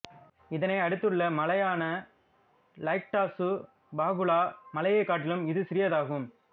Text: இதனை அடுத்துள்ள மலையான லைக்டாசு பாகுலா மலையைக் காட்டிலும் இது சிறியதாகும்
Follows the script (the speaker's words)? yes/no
yes